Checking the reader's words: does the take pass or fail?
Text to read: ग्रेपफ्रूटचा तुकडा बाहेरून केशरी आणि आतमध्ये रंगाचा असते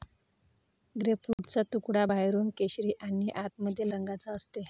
pass